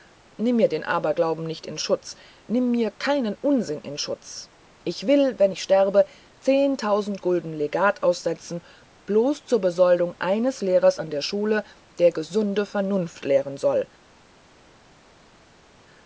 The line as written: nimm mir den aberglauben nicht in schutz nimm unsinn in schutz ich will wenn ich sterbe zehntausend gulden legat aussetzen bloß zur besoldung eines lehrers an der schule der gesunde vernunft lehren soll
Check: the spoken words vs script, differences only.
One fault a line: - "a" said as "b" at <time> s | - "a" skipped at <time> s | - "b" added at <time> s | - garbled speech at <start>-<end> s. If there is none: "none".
- "mir keinen" added at 2.7 s